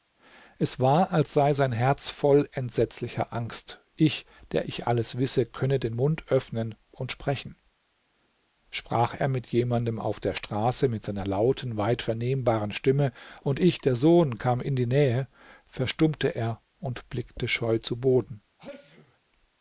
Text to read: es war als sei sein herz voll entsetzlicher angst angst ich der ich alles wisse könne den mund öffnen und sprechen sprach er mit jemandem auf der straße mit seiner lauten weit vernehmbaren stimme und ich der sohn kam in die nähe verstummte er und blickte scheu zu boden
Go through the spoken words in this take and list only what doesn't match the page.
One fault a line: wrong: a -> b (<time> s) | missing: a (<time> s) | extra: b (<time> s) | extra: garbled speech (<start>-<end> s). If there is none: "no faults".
missing: angst (3.8 s)